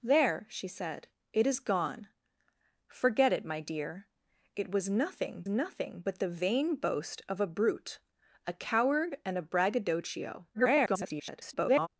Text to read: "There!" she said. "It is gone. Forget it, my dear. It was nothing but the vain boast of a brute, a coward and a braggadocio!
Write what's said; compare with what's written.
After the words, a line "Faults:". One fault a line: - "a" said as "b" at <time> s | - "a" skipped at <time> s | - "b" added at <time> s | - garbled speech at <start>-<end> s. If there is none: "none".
"There!" she said. "It is gone. Forget it, my dear. It was nothing nothing but the vain boast of a brute, a coward and a braggadocio! [garbled]
Faults:
- "nothing" added at 5.5 s
- garbled speech at 10.5-11.9 s